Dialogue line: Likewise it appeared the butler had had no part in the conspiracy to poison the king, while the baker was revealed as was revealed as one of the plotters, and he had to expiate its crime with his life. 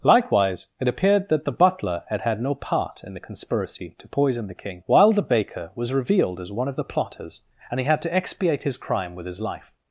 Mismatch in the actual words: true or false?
true